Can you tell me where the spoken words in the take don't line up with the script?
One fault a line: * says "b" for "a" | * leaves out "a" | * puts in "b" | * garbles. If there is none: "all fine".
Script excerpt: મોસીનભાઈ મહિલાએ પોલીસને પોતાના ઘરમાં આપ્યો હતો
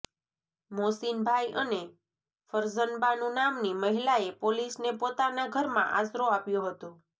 * puts in "અને ફરઝનબાનુ નામની"
* puts in "આશરો"